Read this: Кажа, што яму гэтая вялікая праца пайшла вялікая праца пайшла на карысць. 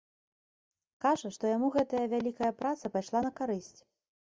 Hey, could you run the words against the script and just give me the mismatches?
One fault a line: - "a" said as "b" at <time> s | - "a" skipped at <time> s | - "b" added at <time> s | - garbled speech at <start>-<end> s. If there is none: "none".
- "вялікая праца пайшла" skipped at 3.2 s